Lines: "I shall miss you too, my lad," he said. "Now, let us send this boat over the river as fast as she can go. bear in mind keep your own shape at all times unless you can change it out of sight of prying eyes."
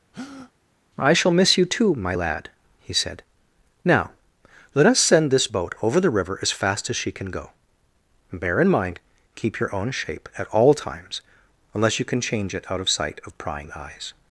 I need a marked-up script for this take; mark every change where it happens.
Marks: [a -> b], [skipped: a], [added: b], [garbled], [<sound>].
[breath] "I shall miss you too, my lad," he said. "Now, let us send this boat over the river as fast as she can go. bear in mind keep your own shape at all times unless you can change it out of sight of prying eyes."